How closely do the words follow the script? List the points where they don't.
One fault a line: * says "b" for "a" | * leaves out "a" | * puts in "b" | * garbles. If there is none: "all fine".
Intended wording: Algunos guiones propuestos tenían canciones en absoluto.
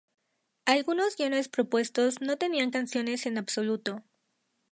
* puts in "no"